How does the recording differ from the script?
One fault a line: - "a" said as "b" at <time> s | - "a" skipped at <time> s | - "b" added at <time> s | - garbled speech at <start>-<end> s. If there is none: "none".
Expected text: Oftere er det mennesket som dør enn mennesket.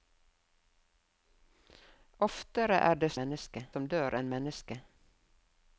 none